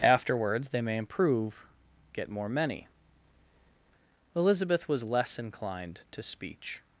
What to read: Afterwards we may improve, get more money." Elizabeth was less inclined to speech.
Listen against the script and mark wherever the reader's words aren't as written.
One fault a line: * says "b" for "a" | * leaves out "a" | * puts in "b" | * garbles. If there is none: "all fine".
* says "they" for "we"
* says "many" for "money"